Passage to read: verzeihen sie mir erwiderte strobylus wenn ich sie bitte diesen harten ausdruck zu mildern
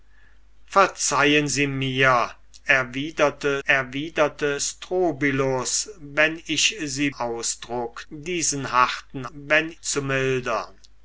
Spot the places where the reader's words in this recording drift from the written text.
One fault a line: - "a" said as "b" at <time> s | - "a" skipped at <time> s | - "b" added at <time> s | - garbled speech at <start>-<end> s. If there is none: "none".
- "erwiderte" added at 3.6 s
- "bitte" said as "ausdruck" at 7.1 s
- "ausdruck" said as "wenn" at 9.3 s